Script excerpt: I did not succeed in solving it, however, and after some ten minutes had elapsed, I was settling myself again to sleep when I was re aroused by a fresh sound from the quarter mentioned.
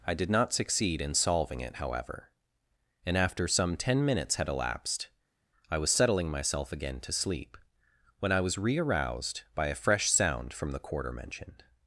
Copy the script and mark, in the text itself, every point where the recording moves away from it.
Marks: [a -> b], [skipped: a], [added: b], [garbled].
I did not succeed in solving it, however, and after some ten minutes had elapsed, I was settling myself again to sleep when I was re aroused by a fresh sound from the quarter mentioned.